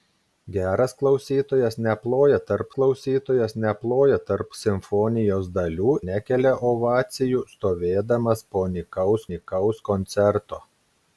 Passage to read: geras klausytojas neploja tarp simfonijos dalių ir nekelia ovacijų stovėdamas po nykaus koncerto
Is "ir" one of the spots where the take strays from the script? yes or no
yes